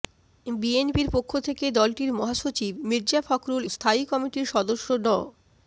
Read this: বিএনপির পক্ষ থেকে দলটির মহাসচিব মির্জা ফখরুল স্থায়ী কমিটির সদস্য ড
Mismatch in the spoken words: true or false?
false